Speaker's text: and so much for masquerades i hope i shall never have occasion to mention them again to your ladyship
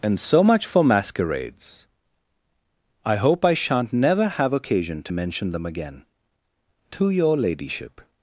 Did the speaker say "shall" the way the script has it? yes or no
no